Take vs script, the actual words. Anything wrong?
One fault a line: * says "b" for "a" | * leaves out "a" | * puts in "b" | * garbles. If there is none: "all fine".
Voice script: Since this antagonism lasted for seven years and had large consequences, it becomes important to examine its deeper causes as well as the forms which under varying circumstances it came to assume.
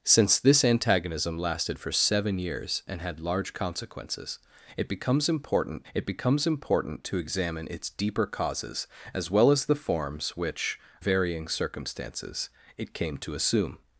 * puts in "it becomes important"
* leaves out "under"